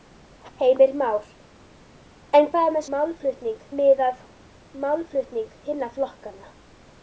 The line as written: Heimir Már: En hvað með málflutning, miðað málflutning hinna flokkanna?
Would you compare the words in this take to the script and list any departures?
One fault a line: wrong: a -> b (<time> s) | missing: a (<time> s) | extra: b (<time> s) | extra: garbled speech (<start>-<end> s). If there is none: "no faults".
no faults